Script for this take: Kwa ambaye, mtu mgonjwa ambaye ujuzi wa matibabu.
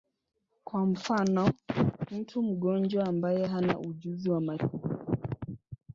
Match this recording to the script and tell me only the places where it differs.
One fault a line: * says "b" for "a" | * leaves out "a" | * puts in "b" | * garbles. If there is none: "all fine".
* says "mfano" for "ambaye"
* puts in "hana"